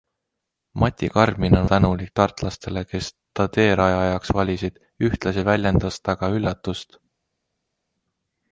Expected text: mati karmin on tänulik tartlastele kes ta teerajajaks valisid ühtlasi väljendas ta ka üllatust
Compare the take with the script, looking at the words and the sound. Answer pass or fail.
pass